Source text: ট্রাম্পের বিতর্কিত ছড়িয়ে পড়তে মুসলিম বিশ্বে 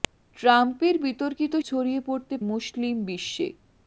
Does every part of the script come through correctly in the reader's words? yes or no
yes